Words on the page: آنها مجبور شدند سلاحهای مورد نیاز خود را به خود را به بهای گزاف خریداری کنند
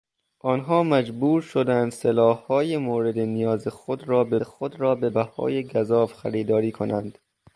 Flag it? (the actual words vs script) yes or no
no